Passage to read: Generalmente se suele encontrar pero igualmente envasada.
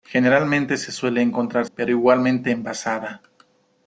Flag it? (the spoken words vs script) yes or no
no